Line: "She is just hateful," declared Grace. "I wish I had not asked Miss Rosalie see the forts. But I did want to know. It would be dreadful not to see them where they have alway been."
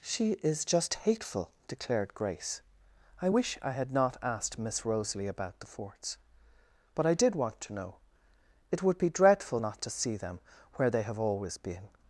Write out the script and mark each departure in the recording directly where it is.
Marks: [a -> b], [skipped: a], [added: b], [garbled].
"She is just hateful," declared Grace. "I wish I had not asked Miss Rosalie [see -> about] the forts. But I did want to know. It would be dreadful not to see them where they have [alway -> always] been."